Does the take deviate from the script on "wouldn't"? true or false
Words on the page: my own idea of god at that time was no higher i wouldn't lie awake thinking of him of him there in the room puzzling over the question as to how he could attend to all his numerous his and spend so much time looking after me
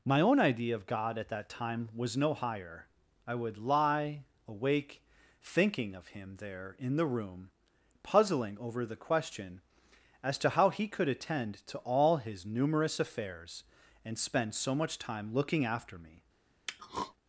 true